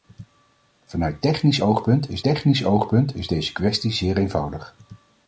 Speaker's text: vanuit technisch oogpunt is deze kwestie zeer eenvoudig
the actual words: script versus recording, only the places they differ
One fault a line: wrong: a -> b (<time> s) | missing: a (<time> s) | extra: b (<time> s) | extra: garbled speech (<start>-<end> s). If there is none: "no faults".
extra: technisch oogpunt is (2.2 s)